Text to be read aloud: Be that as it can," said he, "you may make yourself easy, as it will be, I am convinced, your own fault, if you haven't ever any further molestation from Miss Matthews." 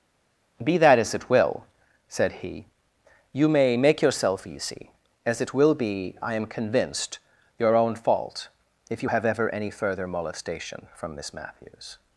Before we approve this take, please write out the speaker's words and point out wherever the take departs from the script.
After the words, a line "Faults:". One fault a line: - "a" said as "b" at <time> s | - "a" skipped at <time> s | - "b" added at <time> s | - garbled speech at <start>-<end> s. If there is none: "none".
Be that as it will," said he, "you may make yourself easy, as it will be, I am convinced, your own fault, if you have ever any further molestation from Miss Matthews."
Faults:
- "can" said as "will" at 1.3 s
- "haven't" said as "have" at 9.1 s